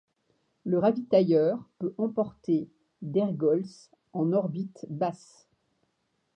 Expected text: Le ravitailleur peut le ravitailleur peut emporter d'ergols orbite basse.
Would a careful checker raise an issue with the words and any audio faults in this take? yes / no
yes